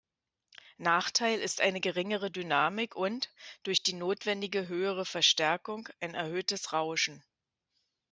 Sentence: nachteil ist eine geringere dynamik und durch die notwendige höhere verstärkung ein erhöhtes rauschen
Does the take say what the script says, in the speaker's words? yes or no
yes